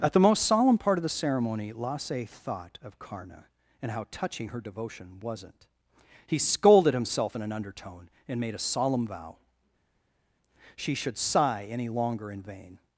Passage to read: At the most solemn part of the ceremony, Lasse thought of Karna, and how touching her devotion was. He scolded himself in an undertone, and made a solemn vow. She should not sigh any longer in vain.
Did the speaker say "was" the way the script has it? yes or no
no